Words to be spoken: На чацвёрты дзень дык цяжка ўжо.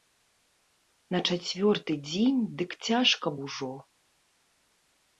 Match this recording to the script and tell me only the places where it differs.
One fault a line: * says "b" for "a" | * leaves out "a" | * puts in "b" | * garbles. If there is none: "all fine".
all fine